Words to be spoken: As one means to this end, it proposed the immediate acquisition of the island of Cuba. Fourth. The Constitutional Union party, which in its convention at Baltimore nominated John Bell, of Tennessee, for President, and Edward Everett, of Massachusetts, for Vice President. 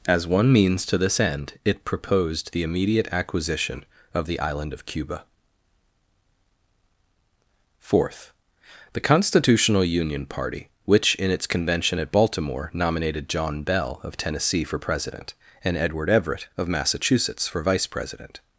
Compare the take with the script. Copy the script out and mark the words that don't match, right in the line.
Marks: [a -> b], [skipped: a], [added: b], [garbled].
As one means to this end, it proposed the immediate acquisition of the island of Cuba. Fourth. The Constitutional Union party, which in its convention at Baltimore nominated John Bell, of Tennessee, for President, and Edward Everett, of Massachusetts, for Vice President.